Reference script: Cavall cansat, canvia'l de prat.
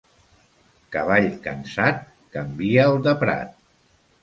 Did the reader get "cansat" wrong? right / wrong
right